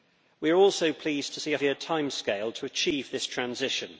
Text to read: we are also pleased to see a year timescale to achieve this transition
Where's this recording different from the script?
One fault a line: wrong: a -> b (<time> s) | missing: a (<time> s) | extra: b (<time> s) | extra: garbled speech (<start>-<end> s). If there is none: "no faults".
no faults